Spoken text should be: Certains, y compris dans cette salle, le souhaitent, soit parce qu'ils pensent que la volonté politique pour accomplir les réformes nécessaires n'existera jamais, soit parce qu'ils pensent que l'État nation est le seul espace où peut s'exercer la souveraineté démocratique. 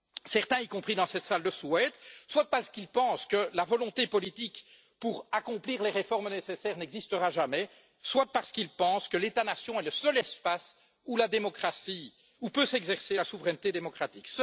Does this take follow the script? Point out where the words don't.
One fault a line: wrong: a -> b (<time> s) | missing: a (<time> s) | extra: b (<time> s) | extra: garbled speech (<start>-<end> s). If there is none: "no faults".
no faults